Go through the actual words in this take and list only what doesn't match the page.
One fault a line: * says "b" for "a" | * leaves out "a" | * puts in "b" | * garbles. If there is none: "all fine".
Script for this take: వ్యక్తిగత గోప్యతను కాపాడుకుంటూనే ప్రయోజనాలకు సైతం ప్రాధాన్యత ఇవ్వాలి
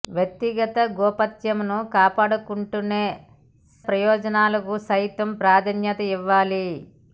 all fine